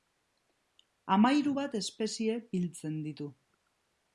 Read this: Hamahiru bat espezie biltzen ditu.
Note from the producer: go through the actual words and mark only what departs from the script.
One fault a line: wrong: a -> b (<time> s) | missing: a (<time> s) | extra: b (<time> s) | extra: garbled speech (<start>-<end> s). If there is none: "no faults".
no faults